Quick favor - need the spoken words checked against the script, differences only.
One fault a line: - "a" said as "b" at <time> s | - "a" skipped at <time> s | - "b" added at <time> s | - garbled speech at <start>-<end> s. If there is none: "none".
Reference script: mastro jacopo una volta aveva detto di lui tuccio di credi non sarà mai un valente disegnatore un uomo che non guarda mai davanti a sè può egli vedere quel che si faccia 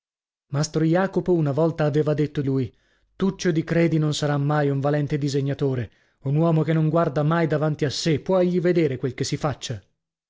- "di" skipped at 2.4 s